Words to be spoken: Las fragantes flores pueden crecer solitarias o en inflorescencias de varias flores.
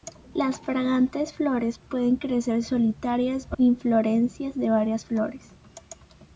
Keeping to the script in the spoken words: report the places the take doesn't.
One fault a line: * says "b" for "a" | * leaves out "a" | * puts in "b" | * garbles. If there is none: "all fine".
* leaves out "en"